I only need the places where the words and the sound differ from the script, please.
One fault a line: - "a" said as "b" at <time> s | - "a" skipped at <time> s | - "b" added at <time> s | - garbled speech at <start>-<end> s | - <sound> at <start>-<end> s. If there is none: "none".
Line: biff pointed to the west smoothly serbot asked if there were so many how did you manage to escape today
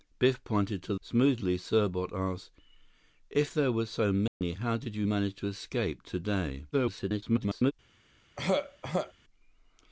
- "the west" skipped at 0.9 s
- dropout at 4.3-4.4 s
- garbled speech at 6.7-7.7 s
- throat clearing at 8.4-9.1 s